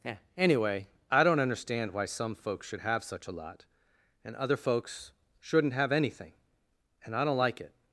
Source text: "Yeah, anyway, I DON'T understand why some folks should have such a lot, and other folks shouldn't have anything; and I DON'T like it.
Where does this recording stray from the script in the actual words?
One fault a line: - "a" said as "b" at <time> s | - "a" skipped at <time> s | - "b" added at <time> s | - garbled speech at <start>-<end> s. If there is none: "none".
none